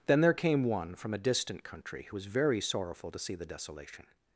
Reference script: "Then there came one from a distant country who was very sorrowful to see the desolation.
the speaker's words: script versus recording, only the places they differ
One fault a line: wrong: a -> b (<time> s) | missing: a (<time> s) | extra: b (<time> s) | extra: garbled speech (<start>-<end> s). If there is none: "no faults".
no faults